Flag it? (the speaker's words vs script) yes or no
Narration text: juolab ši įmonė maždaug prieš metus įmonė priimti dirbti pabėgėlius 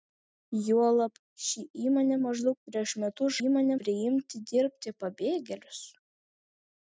no